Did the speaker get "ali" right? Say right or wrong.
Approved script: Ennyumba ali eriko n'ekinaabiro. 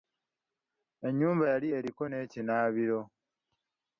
wrong